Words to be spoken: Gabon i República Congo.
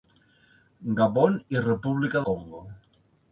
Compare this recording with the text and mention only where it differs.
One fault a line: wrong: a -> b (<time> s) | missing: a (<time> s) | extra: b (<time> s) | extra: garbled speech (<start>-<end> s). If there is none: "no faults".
no faults